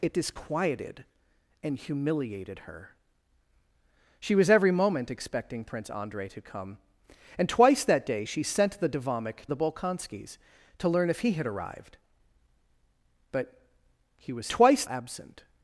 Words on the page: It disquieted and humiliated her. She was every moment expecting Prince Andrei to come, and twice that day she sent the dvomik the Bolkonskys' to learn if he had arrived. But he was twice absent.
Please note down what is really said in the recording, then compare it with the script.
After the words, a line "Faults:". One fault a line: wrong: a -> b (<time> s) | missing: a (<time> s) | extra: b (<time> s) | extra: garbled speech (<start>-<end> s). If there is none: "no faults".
It disquieted and humiliated her. She was every moment expecting Prince Andrei to come, and twice that day she sent the dvomik the Bolkonskys' to learn if he had arrived. But he was twice absent.
Faults:
no faults